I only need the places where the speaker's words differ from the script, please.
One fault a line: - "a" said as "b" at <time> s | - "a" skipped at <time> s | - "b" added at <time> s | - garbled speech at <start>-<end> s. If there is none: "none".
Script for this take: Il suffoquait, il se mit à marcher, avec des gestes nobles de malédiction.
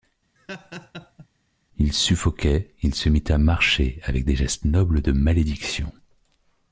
none